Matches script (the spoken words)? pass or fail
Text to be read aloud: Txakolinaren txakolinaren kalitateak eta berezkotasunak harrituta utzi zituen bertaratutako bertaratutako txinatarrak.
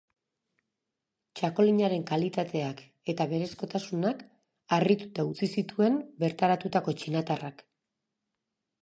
fail